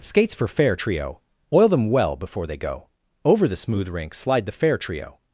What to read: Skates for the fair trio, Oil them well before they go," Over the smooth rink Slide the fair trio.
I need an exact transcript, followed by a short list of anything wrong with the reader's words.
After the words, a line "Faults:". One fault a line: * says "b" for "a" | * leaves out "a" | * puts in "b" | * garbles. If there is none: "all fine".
Skates for fair trio, Oil them well before they go," Over the smooth rink Slide the fair trio.
Faults:
* leaves out "the"